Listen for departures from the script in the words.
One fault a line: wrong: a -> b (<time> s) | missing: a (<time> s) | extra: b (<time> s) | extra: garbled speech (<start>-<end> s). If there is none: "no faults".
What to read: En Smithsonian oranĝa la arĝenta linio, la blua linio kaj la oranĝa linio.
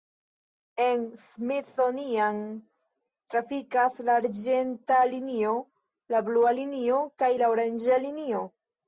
wrong: oranĝa -> trafikas (3.3 s)